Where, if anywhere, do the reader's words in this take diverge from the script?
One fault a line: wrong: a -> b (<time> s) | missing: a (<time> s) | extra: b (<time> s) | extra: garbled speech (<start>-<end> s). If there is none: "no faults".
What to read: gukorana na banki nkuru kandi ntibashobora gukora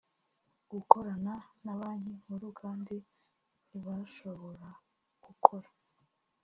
no faults